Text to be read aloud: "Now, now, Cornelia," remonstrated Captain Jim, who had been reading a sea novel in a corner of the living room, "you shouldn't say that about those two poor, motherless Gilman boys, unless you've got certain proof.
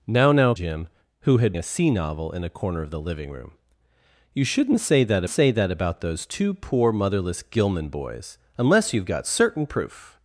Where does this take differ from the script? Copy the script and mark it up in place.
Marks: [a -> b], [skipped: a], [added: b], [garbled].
"Now, now, [skipped: Cornelia," remonstrated Captain] Jim, who had [skipped: been reading] a sea novel in a corner of the living room, "you shouldn't say that [added: say that] about those two poor, motherless Gilman boys, unless you've got certain proof.